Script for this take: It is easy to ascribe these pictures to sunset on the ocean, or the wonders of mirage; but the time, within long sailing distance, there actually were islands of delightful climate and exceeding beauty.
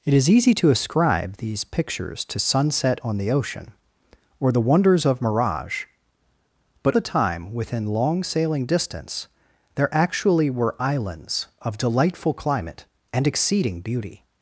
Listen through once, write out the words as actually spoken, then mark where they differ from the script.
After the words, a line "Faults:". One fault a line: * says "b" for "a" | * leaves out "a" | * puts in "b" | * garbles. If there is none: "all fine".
It is easy to ascribe these pictures to sunset on the ocean, or the wonders of mirage; but the time, within long sailing distance, there actually were islands of delightful climate and exceeding beauty.
Faults:
all fine